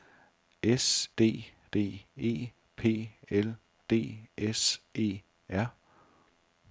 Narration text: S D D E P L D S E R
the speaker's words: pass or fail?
pass